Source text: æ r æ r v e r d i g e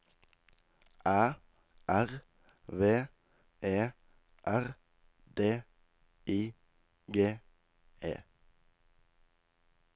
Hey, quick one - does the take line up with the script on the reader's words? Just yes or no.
no